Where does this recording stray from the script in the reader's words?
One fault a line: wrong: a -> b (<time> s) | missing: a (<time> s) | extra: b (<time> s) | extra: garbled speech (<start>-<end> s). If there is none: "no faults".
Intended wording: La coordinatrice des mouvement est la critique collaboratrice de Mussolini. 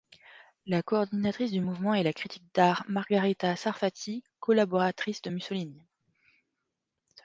wrong: des -> du (1.5 s)
extra: d'art Margherita Sarfatti (2.5 s)